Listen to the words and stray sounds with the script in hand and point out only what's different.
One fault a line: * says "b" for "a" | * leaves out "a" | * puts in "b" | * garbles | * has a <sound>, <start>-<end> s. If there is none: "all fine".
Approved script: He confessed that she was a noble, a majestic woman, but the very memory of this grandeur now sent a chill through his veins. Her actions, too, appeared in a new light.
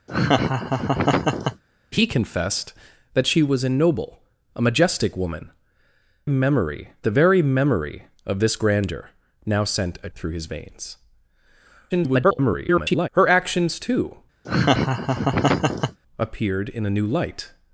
* has a laugh, 0.1-1.6 s
* says "memory" for "but"
* leaves out "chill"
* garbles
* has a laugh, 14.4-16.0 s